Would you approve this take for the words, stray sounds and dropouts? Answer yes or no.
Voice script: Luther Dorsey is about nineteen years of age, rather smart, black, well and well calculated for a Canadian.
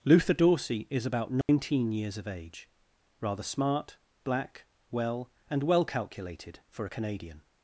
no